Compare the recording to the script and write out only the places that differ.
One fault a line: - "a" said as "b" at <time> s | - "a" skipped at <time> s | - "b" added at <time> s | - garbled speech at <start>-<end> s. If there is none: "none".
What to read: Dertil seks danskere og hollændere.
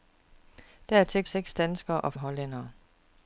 none